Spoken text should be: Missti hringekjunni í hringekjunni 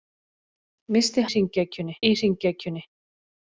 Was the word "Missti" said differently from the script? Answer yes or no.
no